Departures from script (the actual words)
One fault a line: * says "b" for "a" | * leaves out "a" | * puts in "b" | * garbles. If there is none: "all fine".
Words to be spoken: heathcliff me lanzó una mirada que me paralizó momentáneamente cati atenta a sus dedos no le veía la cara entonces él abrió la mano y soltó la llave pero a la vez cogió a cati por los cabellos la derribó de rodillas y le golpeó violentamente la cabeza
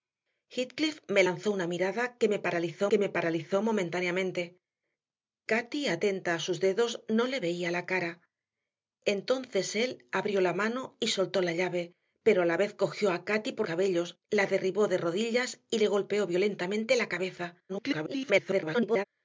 * puts in "que me paralizó"
* leaves out "los"
* garbles